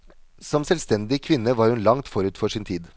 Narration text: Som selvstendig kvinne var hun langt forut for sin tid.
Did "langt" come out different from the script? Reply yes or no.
no